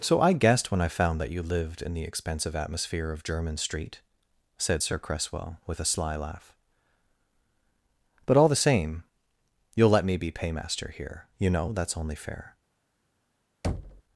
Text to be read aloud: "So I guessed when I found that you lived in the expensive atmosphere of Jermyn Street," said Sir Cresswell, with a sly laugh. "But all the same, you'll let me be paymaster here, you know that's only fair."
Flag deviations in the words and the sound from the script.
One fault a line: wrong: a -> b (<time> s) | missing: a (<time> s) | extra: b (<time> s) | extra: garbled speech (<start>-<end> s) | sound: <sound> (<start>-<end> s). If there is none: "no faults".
sound: thud (13.6-14.0 s)